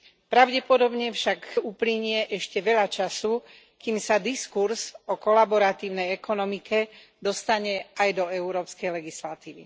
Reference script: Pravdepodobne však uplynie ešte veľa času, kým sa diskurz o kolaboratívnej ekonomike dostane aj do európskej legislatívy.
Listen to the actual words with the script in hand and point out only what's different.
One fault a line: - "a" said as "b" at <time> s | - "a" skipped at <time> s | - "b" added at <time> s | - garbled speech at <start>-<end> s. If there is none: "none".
none